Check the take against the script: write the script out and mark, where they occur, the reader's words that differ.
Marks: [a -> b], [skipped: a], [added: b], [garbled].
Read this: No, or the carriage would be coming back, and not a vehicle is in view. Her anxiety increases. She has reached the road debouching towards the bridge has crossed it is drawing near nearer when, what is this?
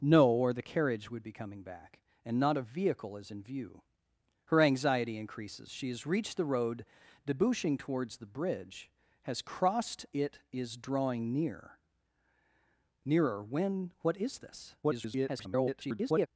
No, or the carriage would be coming back, and not a vehicle is in view. Her anxiety increases. She has reached the road debouching towards the bridge has crossed it is drawing near nearer when, what is this? [garbled]